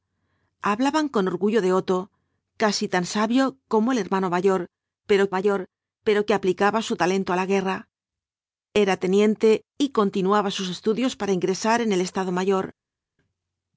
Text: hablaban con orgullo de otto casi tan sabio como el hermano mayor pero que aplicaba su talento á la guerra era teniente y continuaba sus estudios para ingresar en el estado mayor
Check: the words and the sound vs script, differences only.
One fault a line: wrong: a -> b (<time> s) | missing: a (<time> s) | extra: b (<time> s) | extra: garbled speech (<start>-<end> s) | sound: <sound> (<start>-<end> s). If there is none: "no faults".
extra: mayor pero (5.4 s)